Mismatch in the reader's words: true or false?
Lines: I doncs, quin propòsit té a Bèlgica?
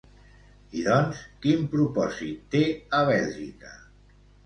false